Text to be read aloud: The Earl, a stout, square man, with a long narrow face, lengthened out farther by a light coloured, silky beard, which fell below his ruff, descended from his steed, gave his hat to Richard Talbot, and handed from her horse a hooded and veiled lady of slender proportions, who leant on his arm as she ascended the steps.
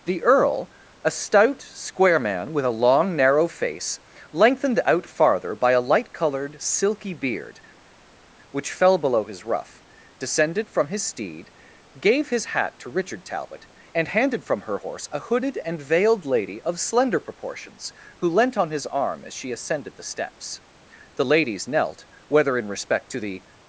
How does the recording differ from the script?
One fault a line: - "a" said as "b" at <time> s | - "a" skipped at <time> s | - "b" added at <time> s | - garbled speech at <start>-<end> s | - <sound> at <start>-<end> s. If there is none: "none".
- "The ladies knelt whether in respect to the" added at 21.1 s